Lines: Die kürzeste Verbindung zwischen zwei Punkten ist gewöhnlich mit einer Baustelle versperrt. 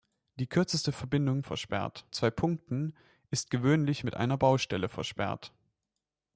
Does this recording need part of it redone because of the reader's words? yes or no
yes